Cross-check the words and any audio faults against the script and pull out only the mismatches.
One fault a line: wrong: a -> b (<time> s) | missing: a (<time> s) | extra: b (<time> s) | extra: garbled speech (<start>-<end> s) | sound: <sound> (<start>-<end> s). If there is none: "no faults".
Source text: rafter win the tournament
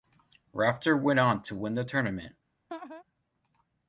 extra: went on to (1.0 s)
sound: laugh (2.7-3.0 s)